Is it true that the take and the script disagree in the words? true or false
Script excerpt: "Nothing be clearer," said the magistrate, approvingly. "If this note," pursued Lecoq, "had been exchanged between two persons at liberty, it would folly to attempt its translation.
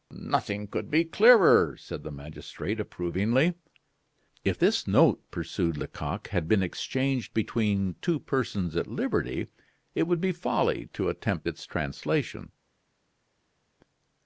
true